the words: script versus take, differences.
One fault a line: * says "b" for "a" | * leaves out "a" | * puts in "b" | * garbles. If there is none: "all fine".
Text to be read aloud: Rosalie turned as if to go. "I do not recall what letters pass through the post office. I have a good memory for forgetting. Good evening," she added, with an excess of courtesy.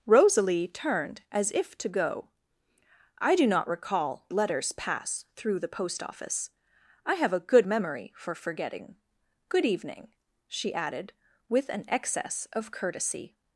* leaves out "what"